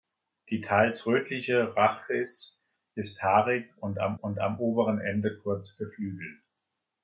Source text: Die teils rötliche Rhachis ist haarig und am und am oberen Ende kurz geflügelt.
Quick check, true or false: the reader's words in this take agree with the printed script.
true